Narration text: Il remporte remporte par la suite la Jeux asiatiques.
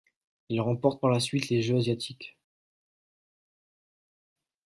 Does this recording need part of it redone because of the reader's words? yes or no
yes